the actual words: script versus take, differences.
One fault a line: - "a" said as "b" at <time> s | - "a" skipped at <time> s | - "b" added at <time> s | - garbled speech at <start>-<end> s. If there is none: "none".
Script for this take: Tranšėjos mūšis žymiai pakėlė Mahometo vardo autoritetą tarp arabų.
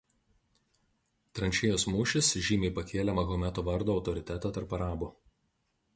none